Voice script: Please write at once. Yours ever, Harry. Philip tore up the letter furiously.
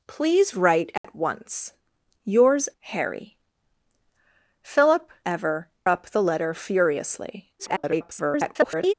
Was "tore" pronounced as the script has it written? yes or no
no